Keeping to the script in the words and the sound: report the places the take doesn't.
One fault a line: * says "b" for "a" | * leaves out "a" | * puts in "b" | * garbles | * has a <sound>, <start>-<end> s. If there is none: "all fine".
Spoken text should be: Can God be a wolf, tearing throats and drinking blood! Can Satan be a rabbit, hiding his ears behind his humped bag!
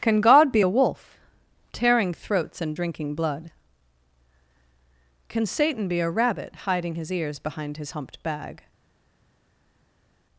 all fine